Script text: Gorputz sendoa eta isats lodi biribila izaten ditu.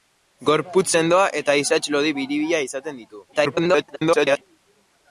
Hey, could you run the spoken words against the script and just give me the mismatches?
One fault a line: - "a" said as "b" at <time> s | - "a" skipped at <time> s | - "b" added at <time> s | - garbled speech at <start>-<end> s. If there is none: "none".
- garbled speech at 3.3-4.4 s